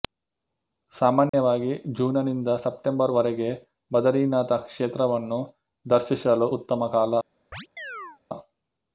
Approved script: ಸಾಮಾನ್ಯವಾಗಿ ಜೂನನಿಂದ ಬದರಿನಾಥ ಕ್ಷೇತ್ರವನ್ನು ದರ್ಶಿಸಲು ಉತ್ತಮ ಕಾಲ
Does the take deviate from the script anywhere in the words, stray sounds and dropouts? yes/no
yes